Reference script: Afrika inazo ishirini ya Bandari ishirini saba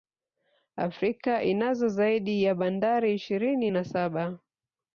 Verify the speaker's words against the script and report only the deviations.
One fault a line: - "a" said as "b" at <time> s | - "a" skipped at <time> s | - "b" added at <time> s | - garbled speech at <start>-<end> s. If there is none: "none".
- "ishirini" said as "zaidi" at 1.9 s
- "na" added at 3.7 s